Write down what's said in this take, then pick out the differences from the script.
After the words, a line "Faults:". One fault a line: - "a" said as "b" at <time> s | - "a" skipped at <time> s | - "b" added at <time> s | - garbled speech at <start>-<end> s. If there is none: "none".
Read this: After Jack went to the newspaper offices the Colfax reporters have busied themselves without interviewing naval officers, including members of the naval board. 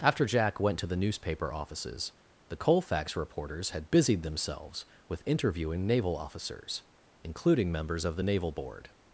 After Jack went to the newspaper offices the Colfax reporters had busied themselves with interviewing naval officers, including members of the naval board.
Faults:
- "have" said as "had" at 3.7 s
- "without" said as "with" at 5.1 s